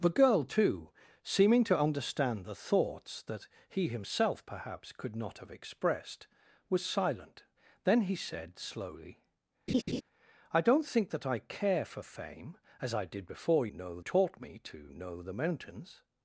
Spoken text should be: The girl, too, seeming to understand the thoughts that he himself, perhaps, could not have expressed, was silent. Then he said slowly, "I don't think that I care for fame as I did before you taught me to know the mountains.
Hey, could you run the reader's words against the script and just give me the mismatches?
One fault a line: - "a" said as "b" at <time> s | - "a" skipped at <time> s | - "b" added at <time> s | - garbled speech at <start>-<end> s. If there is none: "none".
- "you" said as "know" at 13.7 s